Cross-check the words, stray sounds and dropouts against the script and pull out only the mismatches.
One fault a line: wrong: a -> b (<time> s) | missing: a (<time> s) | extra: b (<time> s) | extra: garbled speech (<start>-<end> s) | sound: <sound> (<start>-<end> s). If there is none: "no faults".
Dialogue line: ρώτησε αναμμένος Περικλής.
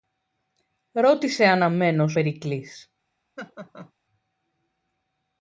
sound: laugh (3.4-3.9 s)